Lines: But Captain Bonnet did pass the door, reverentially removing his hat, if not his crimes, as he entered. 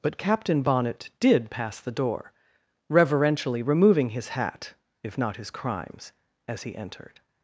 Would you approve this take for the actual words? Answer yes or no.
yes